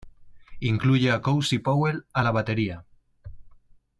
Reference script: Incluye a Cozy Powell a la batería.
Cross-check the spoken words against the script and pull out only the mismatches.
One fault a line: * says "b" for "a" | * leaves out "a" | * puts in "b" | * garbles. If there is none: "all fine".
all fine